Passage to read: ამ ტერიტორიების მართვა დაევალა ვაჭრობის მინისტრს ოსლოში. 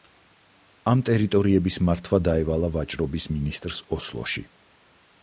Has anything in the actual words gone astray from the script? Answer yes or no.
no